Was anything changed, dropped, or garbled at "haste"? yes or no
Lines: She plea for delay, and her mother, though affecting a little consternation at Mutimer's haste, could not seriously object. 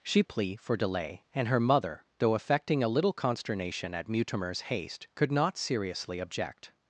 no